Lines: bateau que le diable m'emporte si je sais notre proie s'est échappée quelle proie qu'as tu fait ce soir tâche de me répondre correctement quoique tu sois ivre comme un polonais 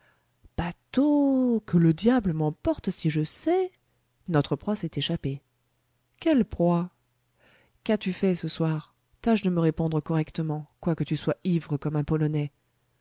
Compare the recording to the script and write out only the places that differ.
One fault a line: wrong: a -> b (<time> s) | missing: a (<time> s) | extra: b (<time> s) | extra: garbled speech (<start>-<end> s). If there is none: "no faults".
no faults